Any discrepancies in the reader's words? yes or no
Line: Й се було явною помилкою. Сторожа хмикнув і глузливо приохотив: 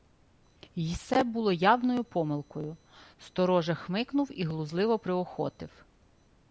no